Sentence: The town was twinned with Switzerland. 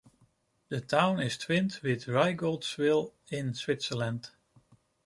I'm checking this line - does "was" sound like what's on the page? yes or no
no